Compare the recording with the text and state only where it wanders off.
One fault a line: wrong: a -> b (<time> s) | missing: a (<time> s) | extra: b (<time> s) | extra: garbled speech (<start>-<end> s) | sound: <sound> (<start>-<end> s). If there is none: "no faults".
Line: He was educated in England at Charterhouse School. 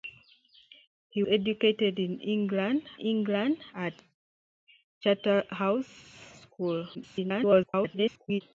missing: was (1.2 s)
extra: England (3.0 s)
extra: garbled speech (6.9-8.4 s)